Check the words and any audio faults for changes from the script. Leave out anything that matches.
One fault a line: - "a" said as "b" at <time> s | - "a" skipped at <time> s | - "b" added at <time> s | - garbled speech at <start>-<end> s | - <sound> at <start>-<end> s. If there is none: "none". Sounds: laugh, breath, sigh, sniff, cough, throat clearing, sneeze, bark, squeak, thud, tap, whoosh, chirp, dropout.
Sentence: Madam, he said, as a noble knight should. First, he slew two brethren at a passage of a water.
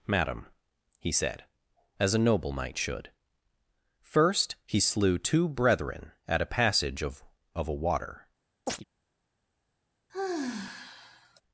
- "of" added at 7.5 s
- chirp at 8.7-8.8 s
- sigh at 10.1-11.4 s